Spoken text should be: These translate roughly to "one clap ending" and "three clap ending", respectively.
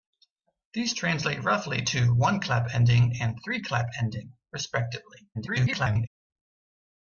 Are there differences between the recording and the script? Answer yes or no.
yes